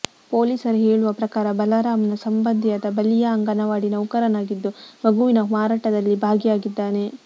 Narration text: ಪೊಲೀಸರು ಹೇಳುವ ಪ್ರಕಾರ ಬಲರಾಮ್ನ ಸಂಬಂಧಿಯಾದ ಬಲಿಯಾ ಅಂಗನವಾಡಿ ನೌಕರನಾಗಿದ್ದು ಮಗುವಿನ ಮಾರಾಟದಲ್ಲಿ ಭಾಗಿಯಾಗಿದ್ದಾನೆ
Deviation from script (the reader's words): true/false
false